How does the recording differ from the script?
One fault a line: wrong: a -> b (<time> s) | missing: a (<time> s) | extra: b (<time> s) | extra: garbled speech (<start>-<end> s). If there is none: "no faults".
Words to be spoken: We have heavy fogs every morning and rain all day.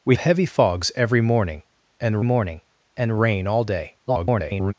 missing: have (0.1 s)
extra: morning and (2.2 s)
extra: garbled speech (4.1-4.7 s)